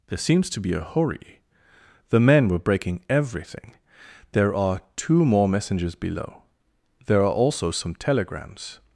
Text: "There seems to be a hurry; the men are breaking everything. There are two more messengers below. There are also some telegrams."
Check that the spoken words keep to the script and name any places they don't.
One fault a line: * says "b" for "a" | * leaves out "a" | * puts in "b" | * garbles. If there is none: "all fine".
* says "were" for "are"